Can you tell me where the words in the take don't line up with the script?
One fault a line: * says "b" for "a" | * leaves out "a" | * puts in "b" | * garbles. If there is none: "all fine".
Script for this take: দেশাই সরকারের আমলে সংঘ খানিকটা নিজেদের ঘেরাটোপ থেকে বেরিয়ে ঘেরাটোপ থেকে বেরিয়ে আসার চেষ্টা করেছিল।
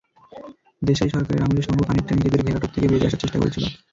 * leaves out "ঘেরাটোপ থেকে বেরিয়ে"